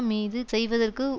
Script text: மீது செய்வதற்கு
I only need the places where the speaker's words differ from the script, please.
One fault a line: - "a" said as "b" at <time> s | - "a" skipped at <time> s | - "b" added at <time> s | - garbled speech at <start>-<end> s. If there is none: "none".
none